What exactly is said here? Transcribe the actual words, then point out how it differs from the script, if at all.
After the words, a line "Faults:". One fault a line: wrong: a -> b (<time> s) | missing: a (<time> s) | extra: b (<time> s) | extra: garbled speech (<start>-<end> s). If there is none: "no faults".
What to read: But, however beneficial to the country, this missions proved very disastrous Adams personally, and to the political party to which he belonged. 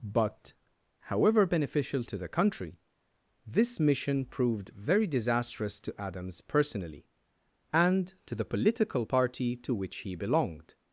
But, however beneficial to the country, this mission proved very disastrous to Adams personally, and to the political party to which he belonged.
Faults:
wrong: missions -> mission (3.8 s)
extra: to (5.8 s)